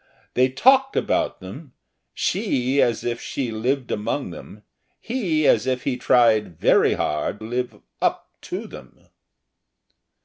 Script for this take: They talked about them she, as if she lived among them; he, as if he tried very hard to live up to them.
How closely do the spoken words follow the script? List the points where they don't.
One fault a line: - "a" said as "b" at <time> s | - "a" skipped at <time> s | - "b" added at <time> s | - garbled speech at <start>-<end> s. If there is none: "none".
- "to" skipped at 7.4 s